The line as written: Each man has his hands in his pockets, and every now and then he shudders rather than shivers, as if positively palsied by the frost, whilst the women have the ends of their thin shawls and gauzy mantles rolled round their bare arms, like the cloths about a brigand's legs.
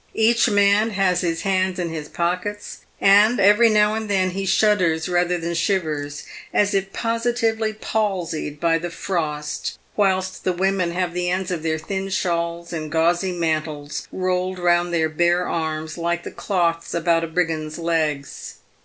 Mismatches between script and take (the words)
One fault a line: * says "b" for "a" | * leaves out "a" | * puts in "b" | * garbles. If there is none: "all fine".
all fine